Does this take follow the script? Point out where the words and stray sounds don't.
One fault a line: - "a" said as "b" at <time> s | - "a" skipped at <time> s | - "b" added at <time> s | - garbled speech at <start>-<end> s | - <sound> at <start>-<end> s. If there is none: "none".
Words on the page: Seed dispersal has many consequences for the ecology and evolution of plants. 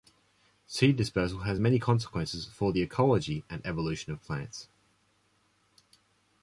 none